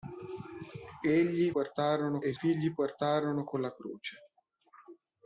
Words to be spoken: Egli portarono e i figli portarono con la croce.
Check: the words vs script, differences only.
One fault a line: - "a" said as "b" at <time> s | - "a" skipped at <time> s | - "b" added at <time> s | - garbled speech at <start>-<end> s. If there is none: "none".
none